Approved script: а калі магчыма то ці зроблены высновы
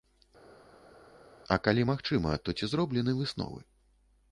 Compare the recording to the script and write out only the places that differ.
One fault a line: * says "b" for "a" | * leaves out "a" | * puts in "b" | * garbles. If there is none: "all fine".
all fine